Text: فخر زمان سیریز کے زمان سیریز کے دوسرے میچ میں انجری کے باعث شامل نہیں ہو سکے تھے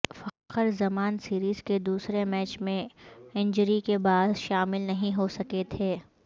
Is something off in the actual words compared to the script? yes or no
yes